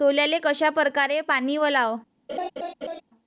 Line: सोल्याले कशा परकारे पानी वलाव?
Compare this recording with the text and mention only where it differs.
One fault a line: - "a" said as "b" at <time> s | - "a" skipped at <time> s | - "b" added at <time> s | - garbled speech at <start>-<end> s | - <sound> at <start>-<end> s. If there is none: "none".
- laugh at 2.3-3.0 s